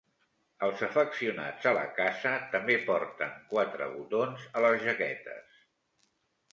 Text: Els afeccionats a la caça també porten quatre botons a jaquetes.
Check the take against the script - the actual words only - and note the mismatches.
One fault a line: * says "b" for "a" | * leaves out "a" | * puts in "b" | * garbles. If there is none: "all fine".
* puts in "les"